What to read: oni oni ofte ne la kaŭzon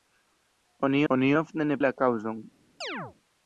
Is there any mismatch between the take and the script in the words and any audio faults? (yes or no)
yes